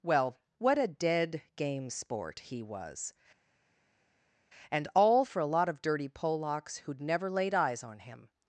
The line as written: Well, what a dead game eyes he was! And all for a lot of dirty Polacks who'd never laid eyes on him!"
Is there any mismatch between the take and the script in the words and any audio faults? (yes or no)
yes